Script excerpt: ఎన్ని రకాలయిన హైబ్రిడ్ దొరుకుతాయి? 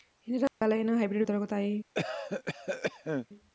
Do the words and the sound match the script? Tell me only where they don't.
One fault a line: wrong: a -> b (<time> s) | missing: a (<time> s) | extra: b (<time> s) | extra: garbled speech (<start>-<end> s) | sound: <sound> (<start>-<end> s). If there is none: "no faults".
sound: dropout (0.5-0.6 s)
sound: cough (1.9-3.3 s)